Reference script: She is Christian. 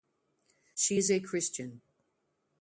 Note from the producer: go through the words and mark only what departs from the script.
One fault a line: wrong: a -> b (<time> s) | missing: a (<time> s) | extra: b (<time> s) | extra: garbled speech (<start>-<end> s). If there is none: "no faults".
extra: a (1.1 s)